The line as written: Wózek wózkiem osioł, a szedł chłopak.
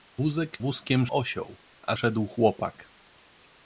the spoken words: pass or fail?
pass